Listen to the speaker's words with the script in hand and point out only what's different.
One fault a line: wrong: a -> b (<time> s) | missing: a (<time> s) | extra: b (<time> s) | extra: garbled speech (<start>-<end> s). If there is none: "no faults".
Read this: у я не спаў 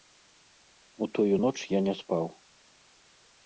extra: тую ноч (1.2 s)